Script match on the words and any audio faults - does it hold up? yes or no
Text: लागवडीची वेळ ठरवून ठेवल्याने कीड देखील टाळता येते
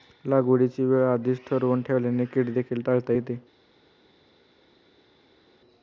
no